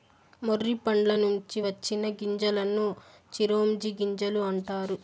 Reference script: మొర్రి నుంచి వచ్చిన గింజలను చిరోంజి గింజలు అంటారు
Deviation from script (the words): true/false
true